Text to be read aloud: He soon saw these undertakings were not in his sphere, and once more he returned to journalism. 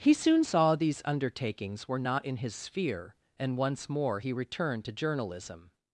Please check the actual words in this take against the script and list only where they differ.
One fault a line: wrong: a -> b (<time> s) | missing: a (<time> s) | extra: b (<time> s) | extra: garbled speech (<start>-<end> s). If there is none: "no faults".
no faults